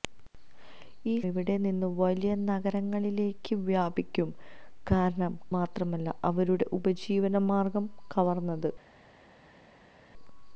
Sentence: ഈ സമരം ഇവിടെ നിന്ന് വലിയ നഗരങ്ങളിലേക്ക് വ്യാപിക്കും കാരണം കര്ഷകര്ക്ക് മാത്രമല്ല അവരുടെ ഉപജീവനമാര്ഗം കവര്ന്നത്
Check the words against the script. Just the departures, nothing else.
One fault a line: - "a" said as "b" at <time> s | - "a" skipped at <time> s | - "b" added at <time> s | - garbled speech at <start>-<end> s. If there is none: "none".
- "സമരം" skipped at 1.1 s
- "കര്ഷകര്ക്ക്" skipped at 5.3 s